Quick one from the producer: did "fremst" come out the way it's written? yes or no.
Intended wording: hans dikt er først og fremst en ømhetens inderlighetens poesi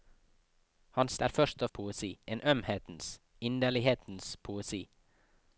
no